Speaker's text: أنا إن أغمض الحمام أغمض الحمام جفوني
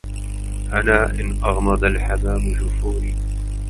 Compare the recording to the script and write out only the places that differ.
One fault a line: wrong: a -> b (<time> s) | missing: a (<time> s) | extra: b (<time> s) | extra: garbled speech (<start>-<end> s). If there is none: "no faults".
missing: أغمض الحمام (2.5 s)